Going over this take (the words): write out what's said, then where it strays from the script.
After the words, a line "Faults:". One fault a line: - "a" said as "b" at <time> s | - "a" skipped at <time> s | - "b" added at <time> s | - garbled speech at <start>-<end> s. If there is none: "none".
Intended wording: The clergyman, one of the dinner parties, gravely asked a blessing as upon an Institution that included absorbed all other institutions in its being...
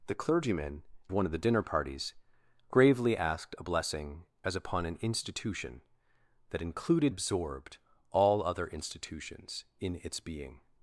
The clergyman, one of the dinner parties, gravely asked a blessing as upon an Institution that included absorbed all other institutions in its being...
Faults:
none